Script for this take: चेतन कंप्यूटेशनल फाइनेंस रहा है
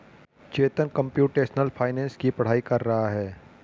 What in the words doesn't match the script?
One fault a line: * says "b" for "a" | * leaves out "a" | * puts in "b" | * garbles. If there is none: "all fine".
* puts in "की पढ़ाई कर"